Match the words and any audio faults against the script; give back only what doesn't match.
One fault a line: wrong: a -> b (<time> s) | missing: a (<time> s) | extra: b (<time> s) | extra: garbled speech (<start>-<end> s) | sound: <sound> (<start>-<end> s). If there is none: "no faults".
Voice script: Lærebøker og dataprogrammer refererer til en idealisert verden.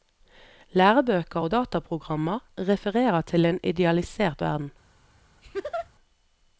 sound: laugh (5.4-5.9 s)